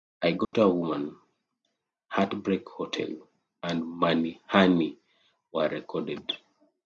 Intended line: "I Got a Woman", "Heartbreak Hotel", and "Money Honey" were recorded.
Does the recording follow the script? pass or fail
pass